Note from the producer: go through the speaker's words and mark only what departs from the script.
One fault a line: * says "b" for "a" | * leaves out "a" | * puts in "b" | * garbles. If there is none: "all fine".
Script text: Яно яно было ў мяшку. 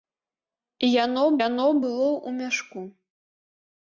all fine